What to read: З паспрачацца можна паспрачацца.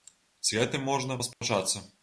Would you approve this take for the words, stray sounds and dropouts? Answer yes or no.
no